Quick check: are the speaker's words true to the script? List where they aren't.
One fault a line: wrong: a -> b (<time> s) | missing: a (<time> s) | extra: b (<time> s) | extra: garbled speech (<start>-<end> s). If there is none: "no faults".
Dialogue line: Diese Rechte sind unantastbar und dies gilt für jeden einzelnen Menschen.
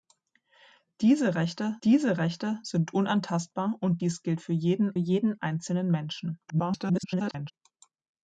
extra: diese Rechte (1.8 s)
extra: jeden (5.0 s)
extra: garbled speech (6.5-7.5 s)